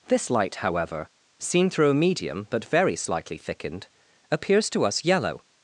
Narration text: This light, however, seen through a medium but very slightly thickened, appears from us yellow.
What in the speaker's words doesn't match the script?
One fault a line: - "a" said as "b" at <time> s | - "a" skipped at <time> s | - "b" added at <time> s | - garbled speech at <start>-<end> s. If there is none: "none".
- "from" said as "to" at 4.7 s